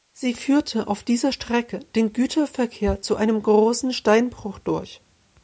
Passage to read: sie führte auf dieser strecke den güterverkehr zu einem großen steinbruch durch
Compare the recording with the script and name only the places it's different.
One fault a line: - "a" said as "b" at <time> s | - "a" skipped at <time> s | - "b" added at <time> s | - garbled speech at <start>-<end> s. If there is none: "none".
none